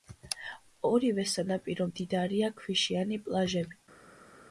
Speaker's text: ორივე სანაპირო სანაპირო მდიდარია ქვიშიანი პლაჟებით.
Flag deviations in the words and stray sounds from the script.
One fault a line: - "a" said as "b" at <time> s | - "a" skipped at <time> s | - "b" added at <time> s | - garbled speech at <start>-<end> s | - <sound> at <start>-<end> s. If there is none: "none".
- "სანაპირო" skipped at 1.9 s